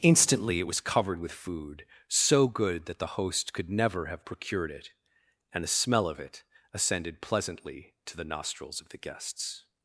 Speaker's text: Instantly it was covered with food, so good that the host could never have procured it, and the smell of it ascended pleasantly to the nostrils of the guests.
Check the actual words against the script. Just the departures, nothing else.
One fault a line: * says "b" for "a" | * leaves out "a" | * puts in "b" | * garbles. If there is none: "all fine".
all fine